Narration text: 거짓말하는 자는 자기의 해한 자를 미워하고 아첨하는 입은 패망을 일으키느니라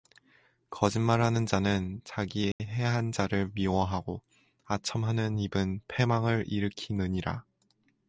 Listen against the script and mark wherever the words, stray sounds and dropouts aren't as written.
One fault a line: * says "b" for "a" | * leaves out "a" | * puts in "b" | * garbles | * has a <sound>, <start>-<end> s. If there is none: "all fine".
* has a dropout, 2.5-2.6 s